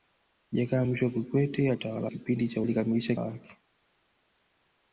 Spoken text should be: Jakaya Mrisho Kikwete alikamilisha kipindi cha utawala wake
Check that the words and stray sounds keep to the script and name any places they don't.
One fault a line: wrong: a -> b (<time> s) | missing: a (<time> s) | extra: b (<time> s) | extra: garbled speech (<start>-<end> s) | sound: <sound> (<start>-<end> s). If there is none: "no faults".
wrong: alikamilisha -> utawala (1.7 s)
wrong: utawala -> alikamilisha (2.6 s)